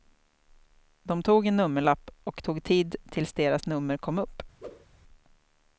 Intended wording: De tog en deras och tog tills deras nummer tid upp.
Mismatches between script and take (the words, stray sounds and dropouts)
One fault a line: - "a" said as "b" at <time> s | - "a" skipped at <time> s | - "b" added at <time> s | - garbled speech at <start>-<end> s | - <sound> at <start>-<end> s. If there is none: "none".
- "deras" said as "nummerlapp" at 1.6 s
- "tid" added at 2.6 s
- "tid" said as "kom" at 4.0 s
- whoosh at 4.6-4.9 s